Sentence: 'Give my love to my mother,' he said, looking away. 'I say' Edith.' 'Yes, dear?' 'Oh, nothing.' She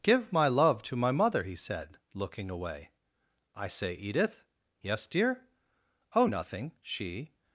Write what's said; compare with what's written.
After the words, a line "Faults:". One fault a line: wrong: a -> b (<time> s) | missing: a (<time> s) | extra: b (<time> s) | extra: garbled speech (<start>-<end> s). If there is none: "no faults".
'Give my love to my mother,' he said, looking away. 'I say' Edith.' 'Yes, dear?' 'Oh, nothing.' She
Faults:
no faults